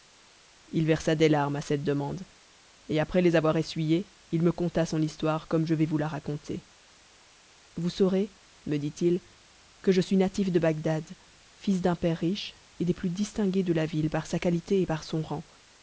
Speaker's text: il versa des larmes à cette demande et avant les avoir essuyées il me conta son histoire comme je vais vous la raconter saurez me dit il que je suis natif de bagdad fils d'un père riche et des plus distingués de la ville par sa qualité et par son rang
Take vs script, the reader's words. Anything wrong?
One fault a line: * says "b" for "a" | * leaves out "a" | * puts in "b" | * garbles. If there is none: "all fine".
* says "après" for "avant"
* puts in "vous"